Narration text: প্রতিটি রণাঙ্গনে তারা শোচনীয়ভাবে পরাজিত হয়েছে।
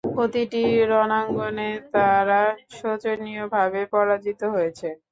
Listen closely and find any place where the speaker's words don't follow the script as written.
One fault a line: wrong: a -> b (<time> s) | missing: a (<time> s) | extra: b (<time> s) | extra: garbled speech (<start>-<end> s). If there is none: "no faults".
no faults